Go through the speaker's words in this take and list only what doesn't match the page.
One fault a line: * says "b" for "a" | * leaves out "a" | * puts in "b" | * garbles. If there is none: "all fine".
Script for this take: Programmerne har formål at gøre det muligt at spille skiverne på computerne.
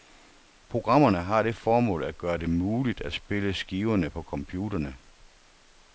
* puts in "det"